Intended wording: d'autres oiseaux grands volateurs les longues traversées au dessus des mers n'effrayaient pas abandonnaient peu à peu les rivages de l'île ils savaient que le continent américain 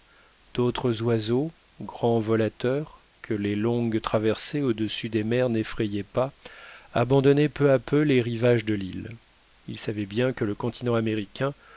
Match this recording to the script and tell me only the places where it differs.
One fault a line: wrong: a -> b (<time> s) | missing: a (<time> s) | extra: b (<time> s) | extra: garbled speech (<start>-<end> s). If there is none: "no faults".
extra: que (3.2 s)
extra: bien (10.1 s)